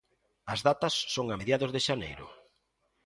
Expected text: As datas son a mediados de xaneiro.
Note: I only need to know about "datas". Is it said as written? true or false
true